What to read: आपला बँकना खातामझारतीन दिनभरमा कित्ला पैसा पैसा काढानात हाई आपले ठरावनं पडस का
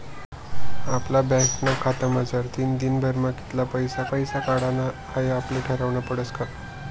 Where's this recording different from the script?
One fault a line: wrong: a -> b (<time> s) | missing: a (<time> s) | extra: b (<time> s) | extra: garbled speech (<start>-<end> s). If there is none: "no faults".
no faults